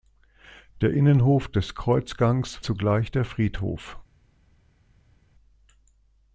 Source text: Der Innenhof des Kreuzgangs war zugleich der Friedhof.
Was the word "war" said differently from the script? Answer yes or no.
yes